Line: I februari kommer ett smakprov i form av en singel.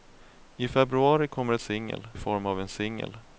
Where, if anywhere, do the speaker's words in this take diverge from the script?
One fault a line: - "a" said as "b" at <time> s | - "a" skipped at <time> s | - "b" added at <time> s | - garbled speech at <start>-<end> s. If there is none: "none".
- "smakprov" said as "singel" at 1.6 s